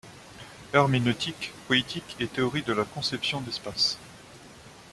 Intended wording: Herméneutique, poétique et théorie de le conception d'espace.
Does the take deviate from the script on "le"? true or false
true